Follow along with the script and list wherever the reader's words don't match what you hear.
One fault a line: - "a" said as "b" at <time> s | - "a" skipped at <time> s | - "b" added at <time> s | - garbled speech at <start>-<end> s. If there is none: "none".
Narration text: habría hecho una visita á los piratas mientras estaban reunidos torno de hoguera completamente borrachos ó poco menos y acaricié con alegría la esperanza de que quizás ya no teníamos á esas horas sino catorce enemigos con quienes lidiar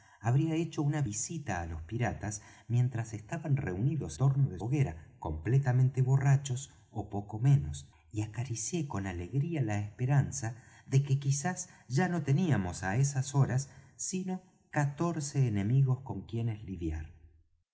none